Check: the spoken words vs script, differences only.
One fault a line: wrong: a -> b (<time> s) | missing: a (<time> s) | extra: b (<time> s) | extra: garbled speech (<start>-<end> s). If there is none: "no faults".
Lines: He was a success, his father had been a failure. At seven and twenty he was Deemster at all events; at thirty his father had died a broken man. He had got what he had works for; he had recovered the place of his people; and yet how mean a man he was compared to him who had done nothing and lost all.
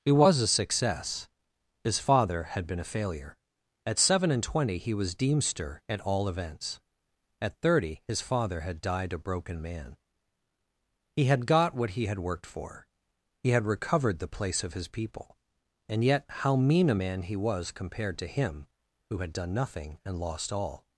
wrong: works -> worked (12.2 s)